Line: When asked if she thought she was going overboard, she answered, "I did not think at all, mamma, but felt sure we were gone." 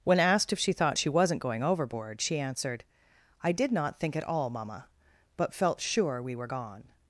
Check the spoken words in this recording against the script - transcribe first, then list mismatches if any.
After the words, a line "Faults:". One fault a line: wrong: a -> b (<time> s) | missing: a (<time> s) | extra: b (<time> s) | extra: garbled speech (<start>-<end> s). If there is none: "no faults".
When asked if she thought she wasn't going overboard, she answered, "I did not think at all, mamma, but felt sure we were gone."
Faults:
wrong: was -> wasn't (1.1 s)